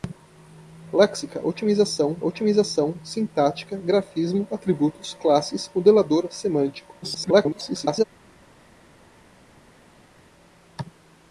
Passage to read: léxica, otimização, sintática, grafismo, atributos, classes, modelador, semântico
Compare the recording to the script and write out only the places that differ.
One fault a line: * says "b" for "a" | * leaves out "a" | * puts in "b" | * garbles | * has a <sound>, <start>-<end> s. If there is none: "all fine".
* puts in "otimização"
* garbles